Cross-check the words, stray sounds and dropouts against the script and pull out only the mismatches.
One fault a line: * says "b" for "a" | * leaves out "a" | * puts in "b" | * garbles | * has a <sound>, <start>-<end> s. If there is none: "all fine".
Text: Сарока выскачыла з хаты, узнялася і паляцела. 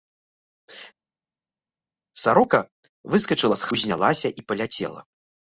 * leaves out "хаты"